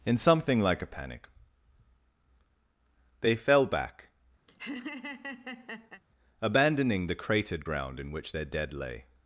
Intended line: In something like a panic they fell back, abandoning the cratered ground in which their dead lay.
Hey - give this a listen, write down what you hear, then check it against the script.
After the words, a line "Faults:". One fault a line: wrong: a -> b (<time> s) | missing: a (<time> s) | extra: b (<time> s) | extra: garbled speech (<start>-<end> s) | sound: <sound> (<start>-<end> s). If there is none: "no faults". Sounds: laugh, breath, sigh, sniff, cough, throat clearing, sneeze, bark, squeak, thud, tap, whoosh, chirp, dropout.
In something like a panic they fell back, abandoning the cratered ground in which their dead lay.
Faults:
sound: laugh (4.5-6.0 s)